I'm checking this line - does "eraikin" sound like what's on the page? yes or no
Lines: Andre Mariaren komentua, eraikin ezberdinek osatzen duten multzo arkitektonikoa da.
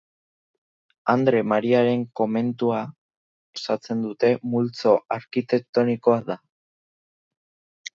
no